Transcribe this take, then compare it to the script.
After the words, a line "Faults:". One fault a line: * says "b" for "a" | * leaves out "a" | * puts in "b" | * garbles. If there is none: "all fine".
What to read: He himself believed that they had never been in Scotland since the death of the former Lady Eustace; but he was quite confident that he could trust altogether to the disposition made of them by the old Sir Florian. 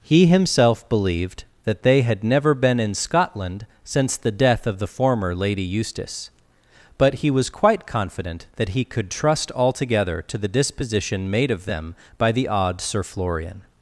He himself believed that they had never been in Scotland since the death of the former Lady Eustace; but he was quite confident that he could trust altogether to the disposition made of them by the odd Sir Florian.
Faults:
* says "odd" for "old"